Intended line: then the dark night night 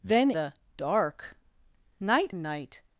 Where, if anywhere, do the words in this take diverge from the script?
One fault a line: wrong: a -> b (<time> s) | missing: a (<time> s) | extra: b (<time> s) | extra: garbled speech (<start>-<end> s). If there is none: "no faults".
no faults